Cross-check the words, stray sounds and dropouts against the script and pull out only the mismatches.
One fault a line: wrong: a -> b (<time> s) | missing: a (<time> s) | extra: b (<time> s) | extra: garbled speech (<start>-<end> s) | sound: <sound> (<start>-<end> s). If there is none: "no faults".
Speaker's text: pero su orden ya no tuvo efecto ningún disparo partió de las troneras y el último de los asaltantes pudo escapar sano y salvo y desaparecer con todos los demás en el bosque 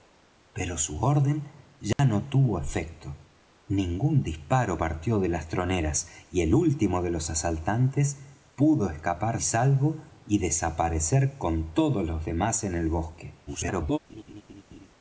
sound: dropout (1.9-2.0 s)
missing: sano (9.4 s)
extra: garbled speech (13.5-14.0 s)
sound: laugh (14.1-14.9 s)